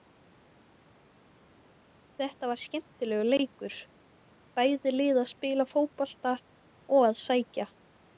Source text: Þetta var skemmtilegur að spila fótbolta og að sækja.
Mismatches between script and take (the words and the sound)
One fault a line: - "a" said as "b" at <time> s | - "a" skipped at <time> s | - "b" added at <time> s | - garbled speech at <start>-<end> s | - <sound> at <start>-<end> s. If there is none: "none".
- "leikur bæði lið" added at 3.3 s